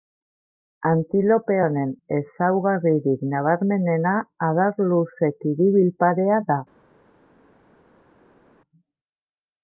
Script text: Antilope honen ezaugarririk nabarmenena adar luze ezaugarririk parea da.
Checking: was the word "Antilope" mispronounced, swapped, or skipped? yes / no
no